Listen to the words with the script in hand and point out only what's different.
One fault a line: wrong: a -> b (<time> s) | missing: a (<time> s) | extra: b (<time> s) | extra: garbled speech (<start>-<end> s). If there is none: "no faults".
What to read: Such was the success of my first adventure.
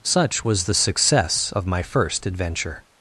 no faults